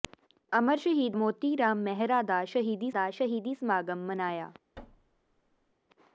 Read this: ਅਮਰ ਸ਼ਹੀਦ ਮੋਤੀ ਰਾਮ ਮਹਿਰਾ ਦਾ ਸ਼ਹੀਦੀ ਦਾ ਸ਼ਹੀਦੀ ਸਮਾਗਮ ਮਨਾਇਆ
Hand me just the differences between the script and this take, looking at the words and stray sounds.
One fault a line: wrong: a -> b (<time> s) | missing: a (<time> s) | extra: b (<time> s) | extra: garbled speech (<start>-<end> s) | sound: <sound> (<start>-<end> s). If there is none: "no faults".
sound: thud (4.8-5.7 s)